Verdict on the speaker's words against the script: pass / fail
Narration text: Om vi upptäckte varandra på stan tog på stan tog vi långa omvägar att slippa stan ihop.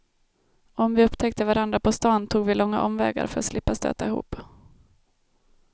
fail